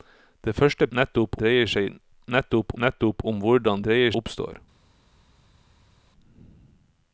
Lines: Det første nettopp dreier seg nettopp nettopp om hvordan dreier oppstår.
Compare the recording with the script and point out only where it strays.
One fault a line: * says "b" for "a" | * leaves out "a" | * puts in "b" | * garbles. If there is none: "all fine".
all fine